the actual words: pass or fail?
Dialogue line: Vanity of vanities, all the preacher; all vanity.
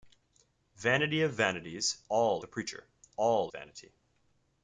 pass